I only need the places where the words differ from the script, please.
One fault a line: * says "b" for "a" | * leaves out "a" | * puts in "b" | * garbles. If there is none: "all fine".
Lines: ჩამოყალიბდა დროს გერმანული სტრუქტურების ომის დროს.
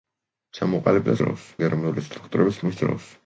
all fine